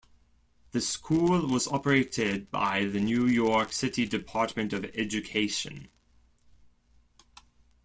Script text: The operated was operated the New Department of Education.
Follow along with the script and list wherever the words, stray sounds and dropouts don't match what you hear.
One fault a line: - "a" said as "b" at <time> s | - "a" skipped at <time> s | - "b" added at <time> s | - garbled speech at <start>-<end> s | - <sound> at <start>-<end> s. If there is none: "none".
- "operated" said as "school" at 0.8 s
- "by" added at 2.5 s
- "York City" added at 3.3 s